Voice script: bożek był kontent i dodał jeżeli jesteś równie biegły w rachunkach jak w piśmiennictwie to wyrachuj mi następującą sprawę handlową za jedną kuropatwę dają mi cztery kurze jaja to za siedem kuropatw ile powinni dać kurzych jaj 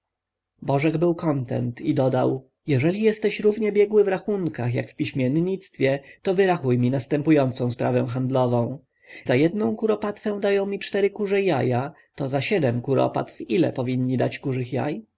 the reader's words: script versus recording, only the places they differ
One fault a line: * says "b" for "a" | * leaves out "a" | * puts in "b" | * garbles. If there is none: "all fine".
all fine